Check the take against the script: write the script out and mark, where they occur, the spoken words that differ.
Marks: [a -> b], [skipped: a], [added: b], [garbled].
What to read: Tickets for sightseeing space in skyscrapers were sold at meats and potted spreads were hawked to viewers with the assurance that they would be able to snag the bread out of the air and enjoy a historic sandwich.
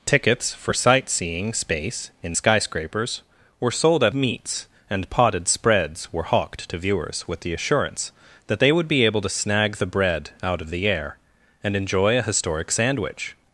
Tickets for sightseeing space in skyscrapers were sold at meats and potted spreads were hawked to viewers with the assurance that they would be able to snag the bread out of the air and enjoy a historic sandwich.